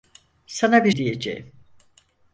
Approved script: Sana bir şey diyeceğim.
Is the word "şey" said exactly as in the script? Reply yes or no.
no